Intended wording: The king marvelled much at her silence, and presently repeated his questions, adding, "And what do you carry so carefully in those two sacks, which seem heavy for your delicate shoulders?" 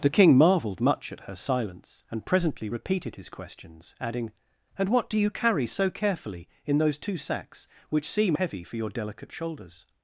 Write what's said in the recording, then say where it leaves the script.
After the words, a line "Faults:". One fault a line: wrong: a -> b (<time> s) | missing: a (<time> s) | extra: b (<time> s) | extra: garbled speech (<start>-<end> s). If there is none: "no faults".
The king marvelled much at her silence, and presently repeated his questions, adding, "And what do you carry so carefully in those two sacks, which seem heavy for your delicate shoulders?"
Faults:
no faults